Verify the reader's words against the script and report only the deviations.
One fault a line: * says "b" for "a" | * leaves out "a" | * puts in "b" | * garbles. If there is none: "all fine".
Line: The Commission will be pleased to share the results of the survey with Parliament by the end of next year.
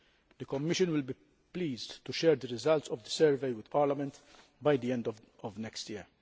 all fine